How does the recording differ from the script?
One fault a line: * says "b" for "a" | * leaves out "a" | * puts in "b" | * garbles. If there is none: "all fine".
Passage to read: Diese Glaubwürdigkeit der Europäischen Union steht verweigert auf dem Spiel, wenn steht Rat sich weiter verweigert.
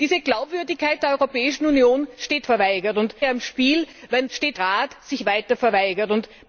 all fine